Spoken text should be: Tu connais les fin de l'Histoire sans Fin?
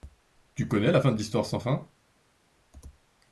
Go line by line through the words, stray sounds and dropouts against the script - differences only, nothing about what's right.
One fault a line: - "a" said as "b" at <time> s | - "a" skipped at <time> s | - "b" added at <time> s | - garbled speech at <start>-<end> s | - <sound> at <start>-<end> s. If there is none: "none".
- "les" said as "la" at 0.9 s